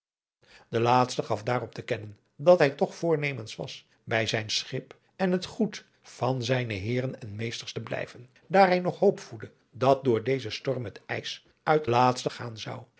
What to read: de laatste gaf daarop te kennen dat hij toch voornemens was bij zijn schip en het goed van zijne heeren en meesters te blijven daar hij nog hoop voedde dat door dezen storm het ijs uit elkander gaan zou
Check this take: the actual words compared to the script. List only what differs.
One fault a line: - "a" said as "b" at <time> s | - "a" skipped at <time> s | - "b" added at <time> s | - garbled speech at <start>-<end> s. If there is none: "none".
- "elkander" said as "laatste" at 11.9 s